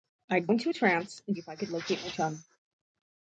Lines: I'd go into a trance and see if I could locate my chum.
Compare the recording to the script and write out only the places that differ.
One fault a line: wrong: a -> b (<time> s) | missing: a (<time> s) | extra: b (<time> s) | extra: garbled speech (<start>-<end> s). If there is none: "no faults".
missing: go (0.5 s)
missing: see (1.4 s)